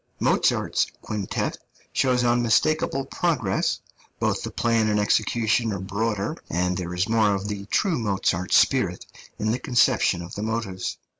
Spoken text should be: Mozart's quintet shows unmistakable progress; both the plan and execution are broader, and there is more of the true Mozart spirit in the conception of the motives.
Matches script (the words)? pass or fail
pass